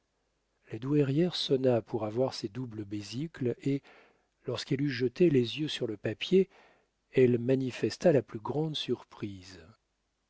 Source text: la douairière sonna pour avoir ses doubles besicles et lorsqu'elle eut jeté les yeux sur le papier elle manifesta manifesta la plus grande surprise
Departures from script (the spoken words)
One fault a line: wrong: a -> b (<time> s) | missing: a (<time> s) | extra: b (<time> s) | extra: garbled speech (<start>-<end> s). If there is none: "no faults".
missing: manifesta (8.1 s)